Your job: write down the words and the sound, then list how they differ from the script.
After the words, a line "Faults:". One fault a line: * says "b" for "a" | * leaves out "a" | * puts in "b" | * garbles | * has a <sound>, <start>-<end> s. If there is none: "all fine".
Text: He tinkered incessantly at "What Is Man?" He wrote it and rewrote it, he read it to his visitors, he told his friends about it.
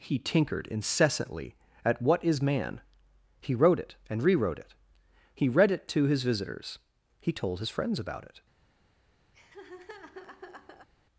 He tinkered incessantly at "What Is Man?" He wrote it and rewrote it, he read it to his visitors, he told his friends about it.
Faults:
* has a laugh, 9.3-10.9 s